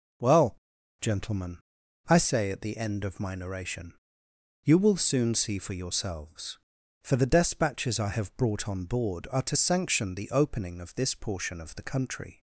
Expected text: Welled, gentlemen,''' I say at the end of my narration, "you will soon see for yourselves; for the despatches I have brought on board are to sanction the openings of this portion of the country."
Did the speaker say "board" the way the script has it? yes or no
yes